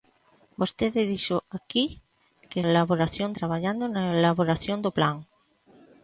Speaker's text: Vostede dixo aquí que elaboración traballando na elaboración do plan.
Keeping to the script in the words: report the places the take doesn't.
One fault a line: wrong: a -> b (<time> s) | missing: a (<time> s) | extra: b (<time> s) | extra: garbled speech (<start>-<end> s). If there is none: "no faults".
no faults